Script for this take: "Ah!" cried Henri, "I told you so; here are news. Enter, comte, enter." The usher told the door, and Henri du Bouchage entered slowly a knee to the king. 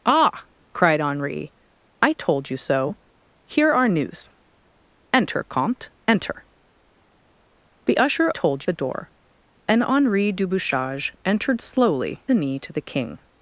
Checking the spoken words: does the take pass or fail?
pass